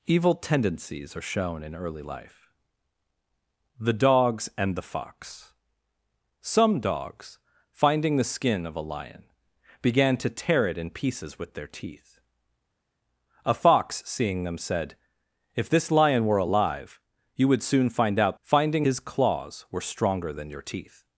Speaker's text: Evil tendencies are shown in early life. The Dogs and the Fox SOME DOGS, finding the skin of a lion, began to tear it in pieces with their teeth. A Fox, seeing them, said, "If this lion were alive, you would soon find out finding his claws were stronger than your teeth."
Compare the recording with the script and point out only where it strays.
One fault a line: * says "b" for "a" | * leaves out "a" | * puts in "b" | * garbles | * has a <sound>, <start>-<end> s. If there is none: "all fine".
all fine